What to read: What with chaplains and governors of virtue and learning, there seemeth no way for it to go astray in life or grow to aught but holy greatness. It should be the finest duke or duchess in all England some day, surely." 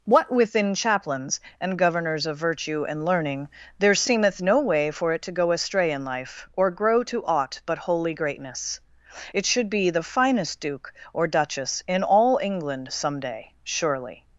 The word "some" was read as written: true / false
true